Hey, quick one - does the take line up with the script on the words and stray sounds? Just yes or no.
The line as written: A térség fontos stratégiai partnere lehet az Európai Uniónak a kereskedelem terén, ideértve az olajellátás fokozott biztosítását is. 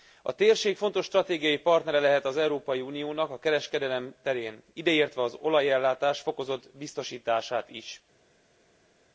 yes